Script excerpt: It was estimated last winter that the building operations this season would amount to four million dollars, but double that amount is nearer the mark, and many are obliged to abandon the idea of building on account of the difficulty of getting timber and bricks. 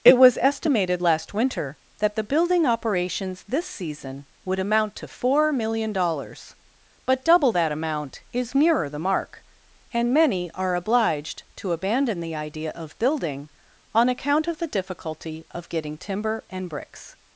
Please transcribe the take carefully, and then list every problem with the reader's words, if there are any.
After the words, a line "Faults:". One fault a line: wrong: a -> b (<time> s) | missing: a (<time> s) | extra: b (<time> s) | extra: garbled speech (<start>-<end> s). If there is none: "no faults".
It was estimated last winter that the building operations this season would amount to four million dollars, but double that amount is nearer the mark, and many are obliged to abandon the idea of building on account of the difficulty of getting timber and bricks.
Faults:
no faults